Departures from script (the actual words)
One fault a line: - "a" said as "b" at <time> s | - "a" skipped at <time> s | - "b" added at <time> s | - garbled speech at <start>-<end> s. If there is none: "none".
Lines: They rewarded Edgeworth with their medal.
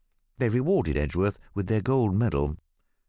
- "gold" added at 1.8 s